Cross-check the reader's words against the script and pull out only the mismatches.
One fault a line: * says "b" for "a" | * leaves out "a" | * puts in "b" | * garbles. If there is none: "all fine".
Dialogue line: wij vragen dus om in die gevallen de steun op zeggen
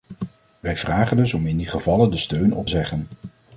all fine